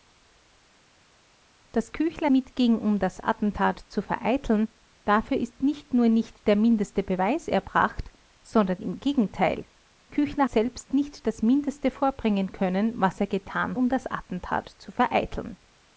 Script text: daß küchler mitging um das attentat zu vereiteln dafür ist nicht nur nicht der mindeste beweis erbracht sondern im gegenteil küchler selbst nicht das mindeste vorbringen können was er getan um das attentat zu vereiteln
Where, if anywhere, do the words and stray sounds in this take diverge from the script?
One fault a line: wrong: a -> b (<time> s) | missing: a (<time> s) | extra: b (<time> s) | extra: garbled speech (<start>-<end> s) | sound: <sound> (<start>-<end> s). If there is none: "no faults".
no faults